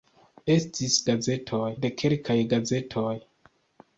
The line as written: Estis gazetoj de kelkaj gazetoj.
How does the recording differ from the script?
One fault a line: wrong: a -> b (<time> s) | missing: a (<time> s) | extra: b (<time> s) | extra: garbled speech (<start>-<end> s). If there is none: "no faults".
no faults